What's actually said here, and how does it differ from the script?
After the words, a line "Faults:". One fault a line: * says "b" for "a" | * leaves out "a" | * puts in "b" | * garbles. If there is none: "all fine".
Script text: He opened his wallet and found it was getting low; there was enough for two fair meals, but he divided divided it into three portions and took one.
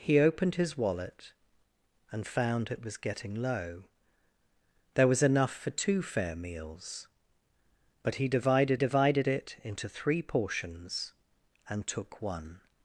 He opened his wallet and found it was getting low; there was enough for two fair meals, but he divided divided it into three portions and took one.
Faults:
all fine